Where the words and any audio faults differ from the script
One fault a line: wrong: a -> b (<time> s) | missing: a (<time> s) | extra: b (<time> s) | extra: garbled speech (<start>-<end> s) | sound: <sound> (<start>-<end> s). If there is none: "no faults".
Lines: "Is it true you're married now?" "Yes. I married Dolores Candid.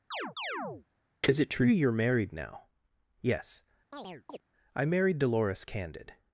sound: chirp (0.1-0.9 s)
sound: chirp (3.9-4.4 s)